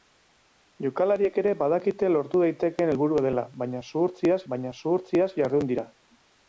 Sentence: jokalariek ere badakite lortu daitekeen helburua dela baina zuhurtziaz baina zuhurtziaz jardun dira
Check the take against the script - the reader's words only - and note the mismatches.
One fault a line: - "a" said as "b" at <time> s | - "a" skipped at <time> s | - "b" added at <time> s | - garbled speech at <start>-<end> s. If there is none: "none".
none